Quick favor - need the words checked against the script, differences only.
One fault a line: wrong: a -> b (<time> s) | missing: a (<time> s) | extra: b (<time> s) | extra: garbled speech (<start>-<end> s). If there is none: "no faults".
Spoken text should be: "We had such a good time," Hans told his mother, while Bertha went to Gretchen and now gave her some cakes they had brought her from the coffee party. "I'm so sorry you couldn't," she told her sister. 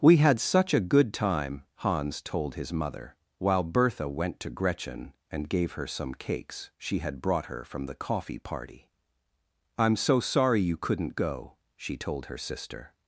missing: now (5.5 s)
wrong: they -> she (6.8 s)
extra: go (11.1 s)